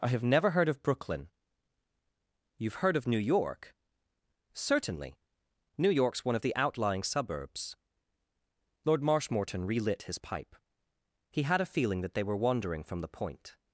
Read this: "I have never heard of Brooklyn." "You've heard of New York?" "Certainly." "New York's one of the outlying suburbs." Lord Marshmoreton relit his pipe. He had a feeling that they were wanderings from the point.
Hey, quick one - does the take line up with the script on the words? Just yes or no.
no